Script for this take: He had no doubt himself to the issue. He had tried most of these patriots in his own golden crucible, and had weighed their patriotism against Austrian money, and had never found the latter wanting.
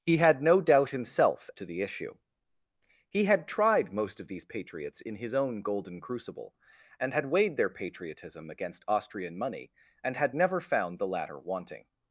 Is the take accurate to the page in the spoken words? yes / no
yes